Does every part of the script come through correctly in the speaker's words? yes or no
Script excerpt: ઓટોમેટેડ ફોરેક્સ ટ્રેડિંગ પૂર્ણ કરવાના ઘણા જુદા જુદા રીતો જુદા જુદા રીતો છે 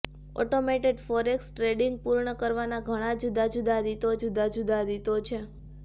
yes